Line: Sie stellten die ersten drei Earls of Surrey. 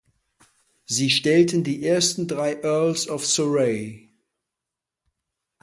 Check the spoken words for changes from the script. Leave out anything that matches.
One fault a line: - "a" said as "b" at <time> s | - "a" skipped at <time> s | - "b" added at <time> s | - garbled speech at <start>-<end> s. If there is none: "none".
none